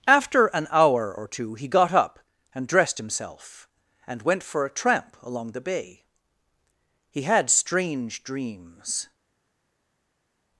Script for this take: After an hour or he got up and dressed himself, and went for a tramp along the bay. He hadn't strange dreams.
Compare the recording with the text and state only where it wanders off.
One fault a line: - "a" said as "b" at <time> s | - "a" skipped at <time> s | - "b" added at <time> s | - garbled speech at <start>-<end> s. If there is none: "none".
- "two" added at 1.3 s
- "hadn't" said as "had" at 7.2 s